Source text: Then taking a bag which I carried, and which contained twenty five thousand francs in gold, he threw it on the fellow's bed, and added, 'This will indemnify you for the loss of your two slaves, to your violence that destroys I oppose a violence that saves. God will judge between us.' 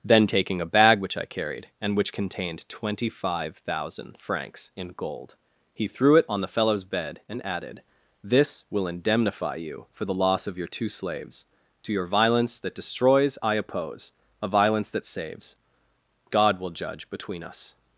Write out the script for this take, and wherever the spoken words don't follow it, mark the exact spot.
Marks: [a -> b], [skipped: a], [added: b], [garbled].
Then taking a bag which I carried, and which contained twenty five thousand francs in gold, he threw it on the fellow's bed, and added, 'This will indemnify you for the loss of your two slaves, to your violence that destroys I oppose a violence that saves. God will judge between us.'